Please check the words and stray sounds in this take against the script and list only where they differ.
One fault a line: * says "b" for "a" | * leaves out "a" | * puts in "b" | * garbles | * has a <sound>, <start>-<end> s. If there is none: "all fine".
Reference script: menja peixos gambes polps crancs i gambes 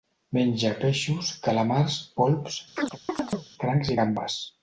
* says "calamars" for "gambes"
* has a chirp, 2.8-3.5 s